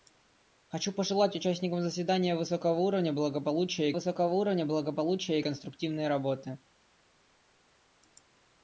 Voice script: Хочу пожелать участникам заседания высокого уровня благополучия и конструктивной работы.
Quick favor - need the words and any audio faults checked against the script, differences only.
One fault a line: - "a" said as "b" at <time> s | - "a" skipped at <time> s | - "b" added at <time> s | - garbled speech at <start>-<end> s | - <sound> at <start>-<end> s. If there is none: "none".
- "высокого уровня благополучия" added at 3.9 s